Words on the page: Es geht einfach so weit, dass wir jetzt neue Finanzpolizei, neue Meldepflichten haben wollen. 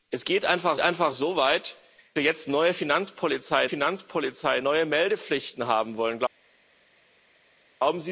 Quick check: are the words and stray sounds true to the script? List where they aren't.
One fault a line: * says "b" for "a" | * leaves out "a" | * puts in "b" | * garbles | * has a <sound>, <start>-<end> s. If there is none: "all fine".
* puts in "einfach"
* leaves out "dass"
* puts in "Finanzpolizei"